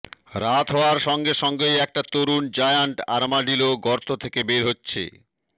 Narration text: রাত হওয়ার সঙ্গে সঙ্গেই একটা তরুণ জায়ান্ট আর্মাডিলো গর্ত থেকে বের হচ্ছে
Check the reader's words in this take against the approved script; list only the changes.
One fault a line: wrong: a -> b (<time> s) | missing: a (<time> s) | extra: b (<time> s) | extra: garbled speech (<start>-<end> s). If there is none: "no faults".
no faults